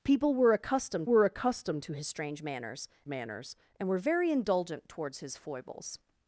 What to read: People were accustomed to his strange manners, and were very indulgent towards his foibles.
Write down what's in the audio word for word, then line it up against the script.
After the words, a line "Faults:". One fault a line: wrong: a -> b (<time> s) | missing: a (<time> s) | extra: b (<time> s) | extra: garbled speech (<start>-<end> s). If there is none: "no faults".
People were accustomed were accustomed to his strange manners manners, and were very indulgent towards his foibles.
Faults:
extra: were accustomed (1.0 s)
extra: manners (3.1 s)